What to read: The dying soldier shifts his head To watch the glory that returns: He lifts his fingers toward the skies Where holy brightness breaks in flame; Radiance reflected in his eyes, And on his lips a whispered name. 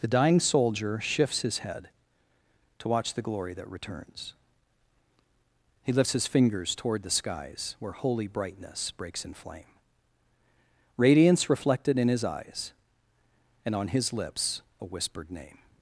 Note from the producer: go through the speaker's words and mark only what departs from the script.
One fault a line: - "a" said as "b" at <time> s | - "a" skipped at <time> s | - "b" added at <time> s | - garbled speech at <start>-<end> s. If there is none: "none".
none